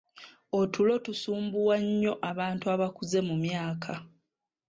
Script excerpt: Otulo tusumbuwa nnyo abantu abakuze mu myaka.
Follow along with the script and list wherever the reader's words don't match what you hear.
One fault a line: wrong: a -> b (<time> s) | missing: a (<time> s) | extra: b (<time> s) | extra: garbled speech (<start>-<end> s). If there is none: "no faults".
no faults